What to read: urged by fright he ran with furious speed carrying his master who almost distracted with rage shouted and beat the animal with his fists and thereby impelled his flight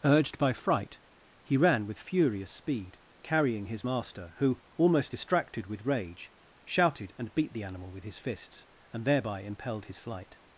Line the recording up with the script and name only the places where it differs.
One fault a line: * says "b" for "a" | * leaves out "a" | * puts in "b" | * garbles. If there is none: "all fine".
all fine